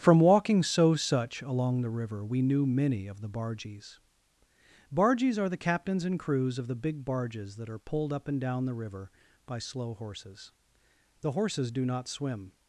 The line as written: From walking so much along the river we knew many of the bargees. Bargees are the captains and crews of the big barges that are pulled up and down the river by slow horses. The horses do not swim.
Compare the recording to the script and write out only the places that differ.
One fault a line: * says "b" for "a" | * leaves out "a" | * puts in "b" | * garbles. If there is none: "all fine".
* says "such" for "much"